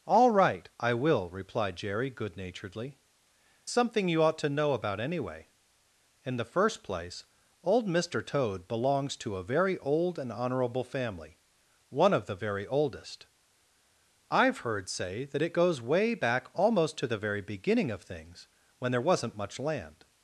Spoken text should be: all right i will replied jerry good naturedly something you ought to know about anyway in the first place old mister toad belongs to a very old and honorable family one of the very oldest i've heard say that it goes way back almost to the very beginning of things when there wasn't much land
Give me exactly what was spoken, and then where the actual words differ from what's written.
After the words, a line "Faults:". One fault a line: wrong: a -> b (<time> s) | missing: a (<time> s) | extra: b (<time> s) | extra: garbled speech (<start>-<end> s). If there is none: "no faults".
all right i will replied jerry good naturedly something you ought to know about anyway in the first place old mister toad belongs to a very old and honorable family one of the very oldest i've heard say that it goes way back almost to the very beginning of things when there wasn't much land
Faults:
no faults